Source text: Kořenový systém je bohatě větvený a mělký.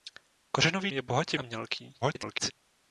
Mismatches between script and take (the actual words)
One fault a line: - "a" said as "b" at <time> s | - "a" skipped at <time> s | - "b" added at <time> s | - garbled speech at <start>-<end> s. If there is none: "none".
- "systém" skipped at 0.9 s
- "větvený" skipped at 1.4 s
- garbled speech at 2.0-2.5 s